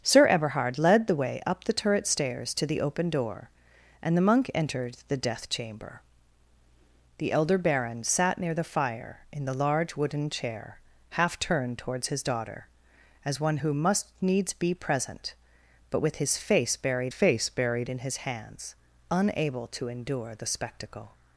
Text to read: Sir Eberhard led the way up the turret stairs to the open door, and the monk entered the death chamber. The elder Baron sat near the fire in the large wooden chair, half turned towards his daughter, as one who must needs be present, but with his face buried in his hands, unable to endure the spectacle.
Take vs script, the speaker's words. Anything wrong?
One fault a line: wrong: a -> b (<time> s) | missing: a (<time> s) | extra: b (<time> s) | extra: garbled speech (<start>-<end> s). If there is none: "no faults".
extra: face buried (17.1 s)